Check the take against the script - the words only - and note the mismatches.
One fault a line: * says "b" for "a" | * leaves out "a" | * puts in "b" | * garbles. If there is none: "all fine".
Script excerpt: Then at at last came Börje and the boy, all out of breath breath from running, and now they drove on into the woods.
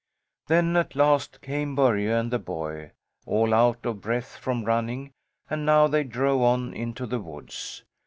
* leaves out "at"
* leaves out "breath"